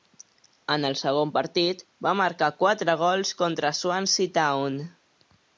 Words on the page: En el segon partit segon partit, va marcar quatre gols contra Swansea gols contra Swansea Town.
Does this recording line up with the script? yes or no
no